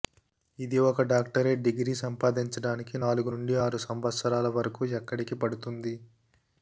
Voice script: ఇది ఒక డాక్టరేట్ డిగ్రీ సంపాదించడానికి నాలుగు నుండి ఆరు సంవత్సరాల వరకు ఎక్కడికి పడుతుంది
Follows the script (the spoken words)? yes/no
yes